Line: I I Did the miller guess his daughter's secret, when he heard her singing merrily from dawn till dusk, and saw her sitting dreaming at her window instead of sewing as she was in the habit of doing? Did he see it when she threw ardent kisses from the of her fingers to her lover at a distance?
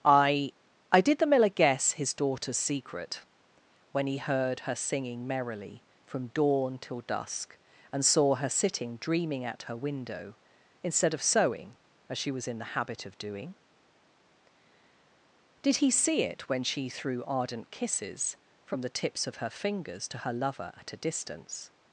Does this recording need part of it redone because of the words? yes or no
yes